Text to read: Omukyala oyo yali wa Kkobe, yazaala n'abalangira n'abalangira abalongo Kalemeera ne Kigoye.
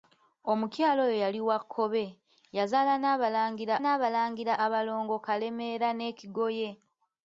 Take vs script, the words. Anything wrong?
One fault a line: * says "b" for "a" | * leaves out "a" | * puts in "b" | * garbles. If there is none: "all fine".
all fine